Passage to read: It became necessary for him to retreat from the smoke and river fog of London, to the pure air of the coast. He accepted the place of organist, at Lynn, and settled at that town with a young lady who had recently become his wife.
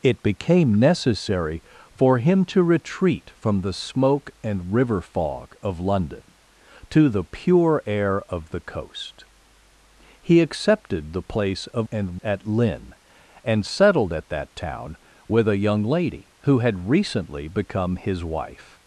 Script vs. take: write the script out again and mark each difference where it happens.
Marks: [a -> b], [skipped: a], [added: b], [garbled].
It became necessary for him to retreat from the smoke and river fog of London, to the pure air of the coast. He accepted the place of [organist, -> and] at Lynn, and settled at that town with a young lady who had recently become his wife.